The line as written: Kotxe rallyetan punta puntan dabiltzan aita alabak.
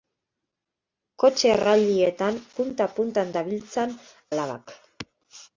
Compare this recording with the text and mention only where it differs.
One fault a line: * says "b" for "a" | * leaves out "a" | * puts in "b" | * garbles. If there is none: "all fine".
* leaves out "aita"